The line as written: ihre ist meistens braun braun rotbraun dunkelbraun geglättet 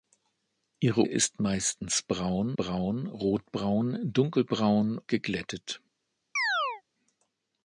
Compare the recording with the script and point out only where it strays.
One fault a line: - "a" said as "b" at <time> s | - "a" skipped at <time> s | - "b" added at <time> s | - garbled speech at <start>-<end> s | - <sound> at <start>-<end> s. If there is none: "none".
- chirp at 6.4-6.8 s